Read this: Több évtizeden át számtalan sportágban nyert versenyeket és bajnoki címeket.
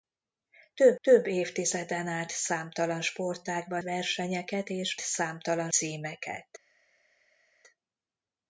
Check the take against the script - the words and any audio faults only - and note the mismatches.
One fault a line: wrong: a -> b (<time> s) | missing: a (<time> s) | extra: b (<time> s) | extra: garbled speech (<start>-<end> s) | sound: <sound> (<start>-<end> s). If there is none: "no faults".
extra: több (1.0 s)
missing: nyert (3.8 s)
wrong: bajnoki -> számtalan (5.0 s)